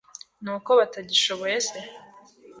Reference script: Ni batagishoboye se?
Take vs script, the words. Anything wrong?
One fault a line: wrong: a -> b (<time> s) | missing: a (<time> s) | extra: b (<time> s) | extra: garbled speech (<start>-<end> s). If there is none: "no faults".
extra: uko (0.6 s)